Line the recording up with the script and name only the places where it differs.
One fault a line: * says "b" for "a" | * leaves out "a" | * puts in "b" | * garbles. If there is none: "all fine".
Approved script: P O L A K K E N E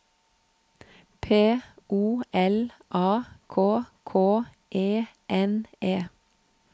all fine